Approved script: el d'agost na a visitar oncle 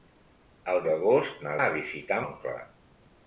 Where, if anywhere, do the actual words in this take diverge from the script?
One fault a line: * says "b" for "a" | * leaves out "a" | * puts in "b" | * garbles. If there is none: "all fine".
all fine